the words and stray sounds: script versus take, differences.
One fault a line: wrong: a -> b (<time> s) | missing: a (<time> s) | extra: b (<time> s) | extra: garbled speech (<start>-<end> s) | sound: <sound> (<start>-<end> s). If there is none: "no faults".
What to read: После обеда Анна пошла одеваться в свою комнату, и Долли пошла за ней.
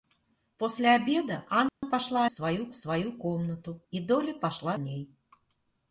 sound: dropout (1.7-1.8 s)
wrong: одеваться -> свою (2.3 s)
missing: за (4.8 s)